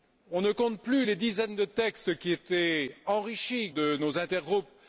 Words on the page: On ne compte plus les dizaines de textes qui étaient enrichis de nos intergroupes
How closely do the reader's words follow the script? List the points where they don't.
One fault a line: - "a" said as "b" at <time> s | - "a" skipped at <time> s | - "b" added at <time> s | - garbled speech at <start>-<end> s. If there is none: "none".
none